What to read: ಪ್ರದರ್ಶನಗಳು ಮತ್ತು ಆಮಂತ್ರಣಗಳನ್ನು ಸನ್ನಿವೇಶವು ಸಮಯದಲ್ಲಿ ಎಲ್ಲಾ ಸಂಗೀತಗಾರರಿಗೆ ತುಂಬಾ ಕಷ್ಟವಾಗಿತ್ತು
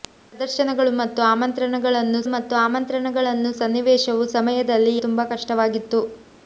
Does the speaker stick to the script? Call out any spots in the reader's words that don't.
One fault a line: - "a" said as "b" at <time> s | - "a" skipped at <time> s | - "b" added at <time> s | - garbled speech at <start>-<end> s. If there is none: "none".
- "ಮತ್ತು ಆಮಂತ್ರಣಗಳನ್ನು" added at 2.3 s
- "ಎಲ್ಲಾ ಸಂಗೀತಗಾರರಿಗೆ" skipped at 4.9 s